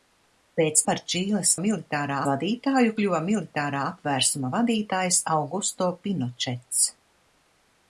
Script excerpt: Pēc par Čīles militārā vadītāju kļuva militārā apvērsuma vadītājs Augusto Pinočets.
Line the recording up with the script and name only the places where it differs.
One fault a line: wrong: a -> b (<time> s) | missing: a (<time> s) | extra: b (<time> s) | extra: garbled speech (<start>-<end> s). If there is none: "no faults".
no faults